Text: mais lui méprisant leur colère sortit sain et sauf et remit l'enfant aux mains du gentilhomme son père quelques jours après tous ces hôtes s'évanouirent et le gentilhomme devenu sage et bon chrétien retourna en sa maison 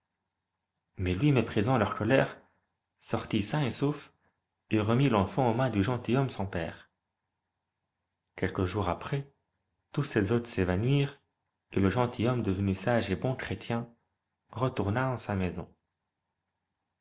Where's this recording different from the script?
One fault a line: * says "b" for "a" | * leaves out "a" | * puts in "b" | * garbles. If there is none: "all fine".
all fine